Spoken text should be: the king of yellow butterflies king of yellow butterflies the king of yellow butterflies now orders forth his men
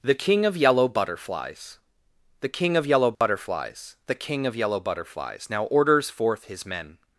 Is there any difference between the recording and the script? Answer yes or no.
yes